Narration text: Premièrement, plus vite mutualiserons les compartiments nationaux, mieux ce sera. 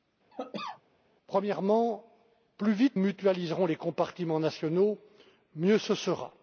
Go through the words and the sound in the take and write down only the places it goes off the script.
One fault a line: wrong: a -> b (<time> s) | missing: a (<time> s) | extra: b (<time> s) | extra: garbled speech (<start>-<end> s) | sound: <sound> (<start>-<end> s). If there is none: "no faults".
sound: cough (0.3-0.8 s)